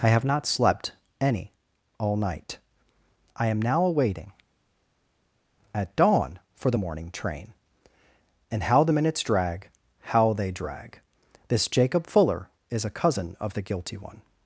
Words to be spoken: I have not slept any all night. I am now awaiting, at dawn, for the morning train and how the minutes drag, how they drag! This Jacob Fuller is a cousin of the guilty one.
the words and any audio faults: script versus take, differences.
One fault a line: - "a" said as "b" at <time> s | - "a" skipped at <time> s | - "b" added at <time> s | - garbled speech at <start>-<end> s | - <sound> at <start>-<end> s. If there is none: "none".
none